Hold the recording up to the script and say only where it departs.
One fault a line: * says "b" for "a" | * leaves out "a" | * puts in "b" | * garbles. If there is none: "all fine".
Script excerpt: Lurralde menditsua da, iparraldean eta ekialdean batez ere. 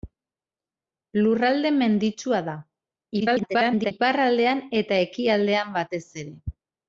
* garbles